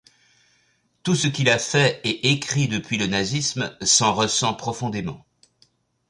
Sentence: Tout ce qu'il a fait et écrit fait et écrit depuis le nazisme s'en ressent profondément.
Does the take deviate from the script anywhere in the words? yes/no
yes